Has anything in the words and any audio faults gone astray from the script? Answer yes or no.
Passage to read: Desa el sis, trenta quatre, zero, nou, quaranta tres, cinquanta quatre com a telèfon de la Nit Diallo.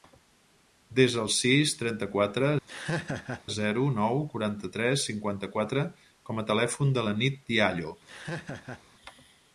yes